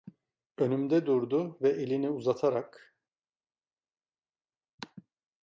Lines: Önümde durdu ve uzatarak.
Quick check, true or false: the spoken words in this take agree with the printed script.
false